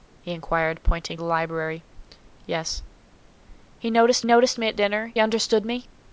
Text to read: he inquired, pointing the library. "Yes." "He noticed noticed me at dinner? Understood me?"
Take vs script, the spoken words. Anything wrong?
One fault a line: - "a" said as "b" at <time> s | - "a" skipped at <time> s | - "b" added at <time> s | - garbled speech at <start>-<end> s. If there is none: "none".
none